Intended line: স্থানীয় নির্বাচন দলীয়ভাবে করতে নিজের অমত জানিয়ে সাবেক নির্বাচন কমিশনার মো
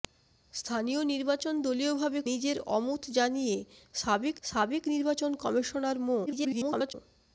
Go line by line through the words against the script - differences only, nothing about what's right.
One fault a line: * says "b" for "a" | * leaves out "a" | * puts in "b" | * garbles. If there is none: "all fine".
* leaves out "করতে"
* puts in "সাবেক"
* garbles